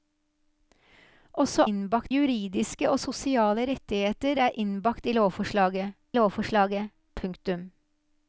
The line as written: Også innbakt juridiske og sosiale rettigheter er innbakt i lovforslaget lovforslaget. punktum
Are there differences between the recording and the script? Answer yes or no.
no